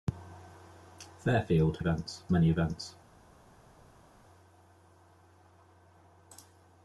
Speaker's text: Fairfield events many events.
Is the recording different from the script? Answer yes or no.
no